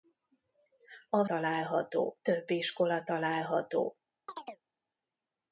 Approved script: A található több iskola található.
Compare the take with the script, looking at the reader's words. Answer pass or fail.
pass